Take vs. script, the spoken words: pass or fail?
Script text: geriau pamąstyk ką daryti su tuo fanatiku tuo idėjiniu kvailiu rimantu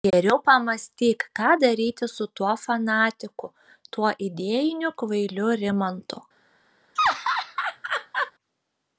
pass